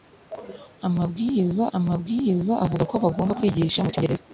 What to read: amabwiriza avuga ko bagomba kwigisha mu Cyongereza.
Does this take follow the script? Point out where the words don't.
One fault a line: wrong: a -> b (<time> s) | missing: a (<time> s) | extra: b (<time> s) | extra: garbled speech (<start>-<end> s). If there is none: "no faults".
extra: amabwiriza (1.8 s)